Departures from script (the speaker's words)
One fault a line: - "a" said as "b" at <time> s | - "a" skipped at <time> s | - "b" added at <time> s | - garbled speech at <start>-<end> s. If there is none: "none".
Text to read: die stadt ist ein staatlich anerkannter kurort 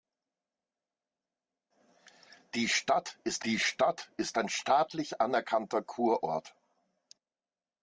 - "die stadt ist" added at 3.5 s